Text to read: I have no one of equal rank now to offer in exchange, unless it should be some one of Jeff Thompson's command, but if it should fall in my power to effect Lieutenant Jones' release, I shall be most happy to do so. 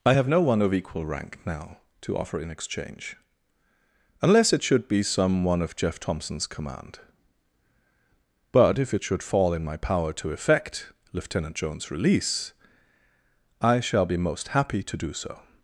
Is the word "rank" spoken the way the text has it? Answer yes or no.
yes